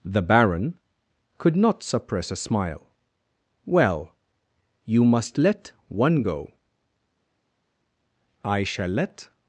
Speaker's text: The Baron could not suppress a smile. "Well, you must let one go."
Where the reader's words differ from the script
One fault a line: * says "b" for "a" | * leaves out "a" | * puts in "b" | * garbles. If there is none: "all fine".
* puts in "I shall let"